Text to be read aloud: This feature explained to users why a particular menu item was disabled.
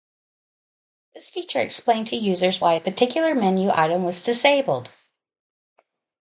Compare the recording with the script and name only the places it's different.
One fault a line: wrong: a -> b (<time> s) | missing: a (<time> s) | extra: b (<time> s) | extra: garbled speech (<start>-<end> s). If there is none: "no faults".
no faults